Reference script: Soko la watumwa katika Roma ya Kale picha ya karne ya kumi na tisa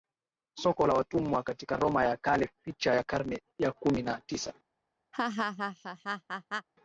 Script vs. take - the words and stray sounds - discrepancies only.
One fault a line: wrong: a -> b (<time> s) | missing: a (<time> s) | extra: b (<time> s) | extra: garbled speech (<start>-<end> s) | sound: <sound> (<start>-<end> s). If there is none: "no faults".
sound: laugh (5.1-6.7 s)